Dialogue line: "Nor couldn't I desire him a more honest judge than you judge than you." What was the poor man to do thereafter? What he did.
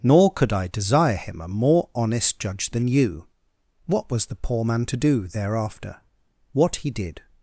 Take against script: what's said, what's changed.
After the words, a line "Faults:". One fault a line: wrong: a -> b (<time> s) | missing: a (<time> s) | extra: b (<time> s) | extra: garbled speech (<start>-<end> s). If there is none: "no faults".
"Nor could I desire him a more honest judge than you." What was the poor man to do thereafter? What he did.
Faults:
wrong: couldn't -> could (0.3 s)
missing: judge than you (3.3 s)